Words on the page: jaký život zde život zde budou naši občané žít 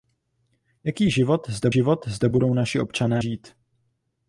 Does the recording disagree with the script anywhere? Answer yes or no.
no